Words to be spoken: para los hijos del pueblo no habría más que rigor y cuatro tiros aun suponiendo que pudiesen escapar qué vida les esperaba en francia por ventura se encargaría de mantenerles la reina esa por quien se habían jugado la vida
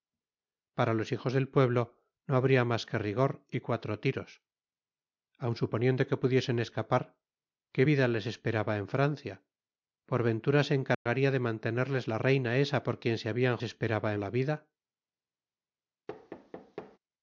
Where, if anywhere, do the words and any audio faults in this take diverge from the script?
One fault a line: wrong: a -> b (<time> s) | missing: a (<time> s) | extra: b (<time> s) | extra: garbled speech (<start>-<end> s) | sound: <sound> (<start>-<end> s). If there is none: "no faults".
sound: dropout (10.9-11.1 s)
wrong: jugado -> esperaba (13.6 s)
sound: thud (16.1-17.0 s)